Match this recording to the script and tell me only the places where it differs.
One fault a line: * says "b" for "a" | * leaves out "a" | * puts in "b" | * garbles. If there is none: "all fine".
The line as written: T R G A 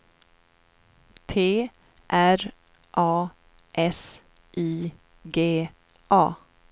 * puts in "A S I"